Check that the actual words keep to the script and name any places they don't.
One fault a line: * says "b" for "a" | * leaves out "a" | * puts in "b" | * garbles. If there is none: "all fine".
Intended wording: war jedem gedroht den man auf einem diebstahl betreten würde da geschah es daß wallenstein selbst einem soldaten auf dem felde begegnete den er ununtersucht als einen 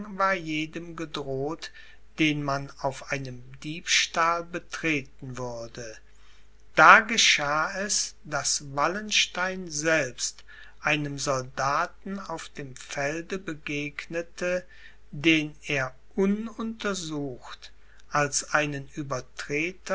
all fine